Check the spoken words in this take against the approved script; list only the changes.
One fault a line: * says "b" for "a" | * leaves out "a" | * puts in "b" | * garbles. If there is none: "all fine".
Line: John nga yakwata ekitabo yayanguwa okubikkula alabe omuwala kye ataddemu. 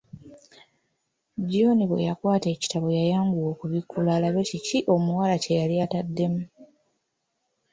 * says "bwe" for "nga"
* puts in "kiki"
* puts in "yali"